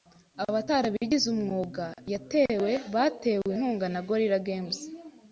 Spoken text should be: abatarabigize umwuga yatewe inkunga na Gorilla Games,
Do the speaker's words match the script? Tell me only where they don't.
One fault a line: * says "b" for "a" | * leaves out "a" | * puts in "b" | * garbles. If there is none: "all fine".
* puts in "batewe"